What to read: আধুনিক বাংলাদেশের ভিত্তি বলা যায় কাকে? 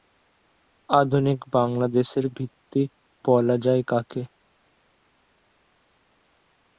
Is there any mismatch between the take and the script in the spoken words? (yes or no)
no